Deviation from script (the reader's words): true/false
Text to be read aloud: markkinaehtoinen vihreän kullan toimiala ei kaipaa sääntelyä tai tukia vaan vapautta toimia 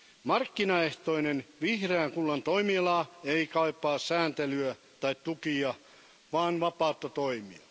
false